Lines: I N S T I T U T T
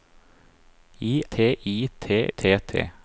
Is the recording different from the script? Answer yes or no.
yes